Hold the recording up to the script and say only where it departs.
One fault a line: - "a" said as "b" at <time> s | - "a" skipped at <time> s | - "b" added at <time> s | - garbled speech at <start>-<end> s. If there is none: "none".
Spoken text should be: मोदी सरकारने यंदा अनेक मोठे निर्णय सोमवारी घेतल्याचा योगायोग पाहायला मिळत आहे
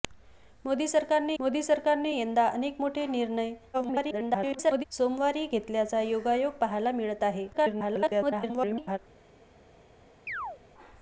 - "मोदी सरकारने" added at 1.4 s
- garbled speech at 3.7-4.8 s
- garbled speech at 7.5-9.0 s